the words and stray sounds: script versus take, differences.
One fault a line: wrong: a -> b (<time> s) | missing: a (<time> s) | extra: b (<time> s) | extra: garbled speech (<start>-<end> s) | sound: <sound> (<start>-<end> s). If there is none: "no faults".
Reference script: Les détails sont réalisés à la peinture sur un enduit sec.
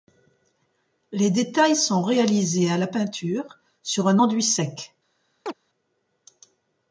sound: chirp (5.5-5.5 s)